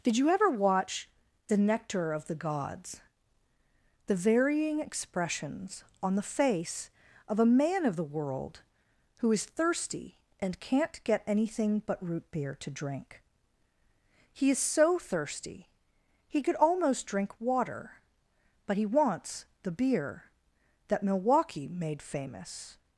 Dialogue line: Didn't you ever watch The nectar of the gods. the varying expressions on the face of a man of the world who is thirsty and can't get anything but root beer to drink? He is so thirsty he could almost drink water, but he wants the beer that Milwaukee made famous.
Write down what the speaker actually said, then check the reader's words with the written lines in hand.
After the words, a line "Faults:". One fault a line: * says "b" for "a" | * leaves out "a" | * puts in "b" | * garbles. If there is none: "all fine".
Did you ever watch The nectar of the gods. the varying expressions on the face of a man of the world who is thirsty and can't get anything but root beer to drink? He is so thirsty he could almost drink water, but he wants the beer that Milwaukee made famous.
Faults:
* says "Did" for "Didn't"